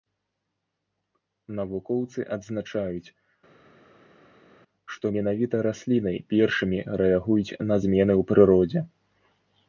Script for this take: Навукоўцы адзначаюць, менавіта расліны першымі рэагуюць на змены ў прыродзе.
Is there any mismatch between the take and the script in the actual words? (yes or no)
yes